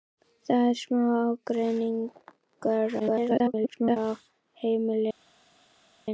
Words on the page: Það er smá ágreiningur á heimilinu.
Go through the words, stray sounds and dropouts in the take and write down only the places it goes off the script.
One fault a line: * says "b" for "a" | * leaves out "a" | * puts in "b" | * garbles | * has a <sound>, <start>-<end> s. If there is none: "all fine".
* garbles